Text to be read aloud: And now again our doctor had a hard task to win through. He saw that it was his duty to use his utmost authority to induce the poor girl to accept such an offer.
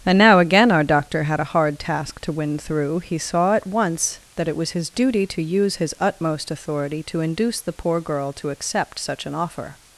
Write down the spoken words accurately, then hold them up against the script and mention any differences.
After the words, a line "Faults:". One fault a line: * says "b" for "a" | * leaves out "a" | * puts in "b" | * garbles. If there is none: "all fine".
And now again our doctor had a hard task to win through. He saw at once that it was his duty to use his utmost authority to induce the poor girl to accept such an offer.
Faults:
* puts in "at once"